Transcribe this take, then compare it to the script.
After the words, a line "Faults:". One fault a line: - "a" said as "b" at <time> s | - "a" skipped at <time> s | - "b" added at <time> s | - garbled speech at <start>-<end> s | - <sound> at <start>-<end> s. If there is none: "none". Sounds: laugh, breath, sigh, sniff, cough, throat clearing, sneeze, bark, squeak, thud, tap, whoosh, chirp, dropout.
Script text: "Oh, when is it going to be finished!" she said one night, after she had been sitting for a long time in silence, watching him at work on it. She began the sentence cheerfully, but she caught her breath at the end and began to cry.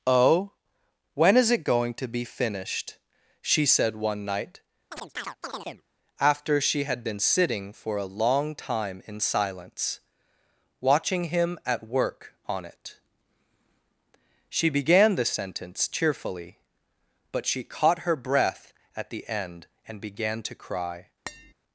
"Oh, when is it going to be finished!" she said one night, after she had been sitting for a long time in silence, watching him at work on it. She began the sentence cheerfully, but she caught her breath at the end and began to cry.
Faults:
- chirp at 4.9-5.8 s
- tap at 21.3-21.5 s